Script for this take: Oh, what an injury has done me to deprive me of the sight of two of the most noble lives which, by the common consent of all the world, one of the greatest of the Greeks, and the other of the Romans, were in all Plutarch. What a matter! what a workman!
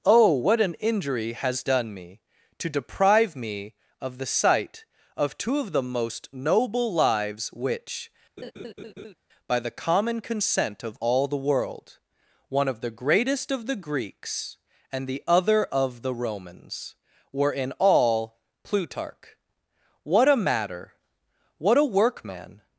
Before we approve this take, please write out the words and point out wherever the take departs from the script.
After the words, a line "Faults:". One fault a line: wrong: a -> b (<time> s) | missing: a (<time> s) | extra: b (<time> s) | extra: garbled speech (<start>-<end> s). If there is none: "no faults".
Oh, what an injury has done me to deprive me of the sight of two of the most noble lives which, by the common consent of all the world, one of the greatest of the Greeks, and the other of the Romans, were in all Plutarch. What a matter! what a workman!
Faults:
no faults